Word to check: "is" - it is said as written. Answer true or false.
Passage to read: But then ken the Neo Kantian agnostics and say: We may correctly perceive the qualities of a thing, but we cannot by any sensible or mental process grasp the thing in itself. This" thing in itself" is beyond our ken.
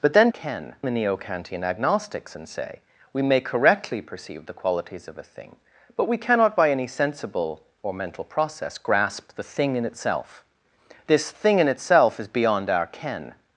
true